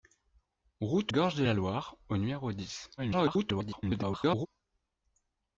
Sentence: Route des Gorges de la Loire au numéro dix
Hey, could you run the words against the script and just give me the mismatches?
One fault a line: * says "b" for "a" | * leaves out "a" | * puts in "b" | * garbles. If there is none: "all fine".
* leaves out "des"
* garbles